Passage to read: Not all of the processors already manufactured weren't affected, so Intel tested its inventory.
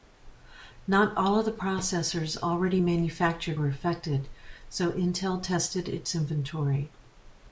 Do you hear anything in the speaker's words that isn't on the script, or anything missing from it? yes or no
yes